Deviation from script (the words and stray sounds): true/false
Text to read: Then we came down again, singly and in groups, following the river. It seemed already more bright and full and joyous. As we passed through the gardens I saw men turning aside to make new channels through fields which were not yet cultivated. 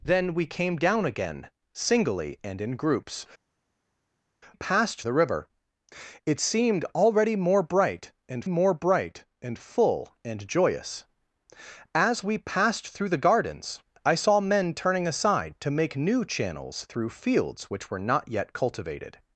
true